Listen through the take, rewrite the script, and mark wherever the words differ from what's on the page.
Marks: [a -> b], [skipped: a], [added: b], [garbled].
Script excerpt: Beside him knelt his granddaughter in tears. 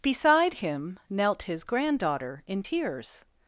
Beside him knelt his granddaughter in tears.